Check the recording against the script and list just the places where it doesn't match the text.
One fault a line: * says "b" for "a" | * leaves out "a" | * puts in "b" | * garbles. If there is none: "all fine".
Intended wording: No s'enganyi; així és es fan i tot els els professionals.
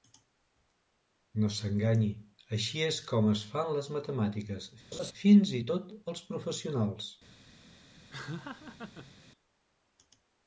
* puts in "com"
* puts in "les matemàtiques fins"
* leaves out "els"